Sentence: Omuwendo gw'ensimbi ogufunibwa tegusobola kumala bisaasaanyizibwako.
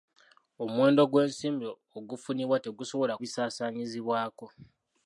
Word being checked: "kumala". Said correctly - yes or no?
no